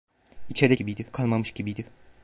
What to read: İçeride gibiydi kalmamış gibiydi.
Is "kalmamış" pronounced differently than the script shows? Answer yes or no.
no